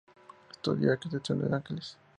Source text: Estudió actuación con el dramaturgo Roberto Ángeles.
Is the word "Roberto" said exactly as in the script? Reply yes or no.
no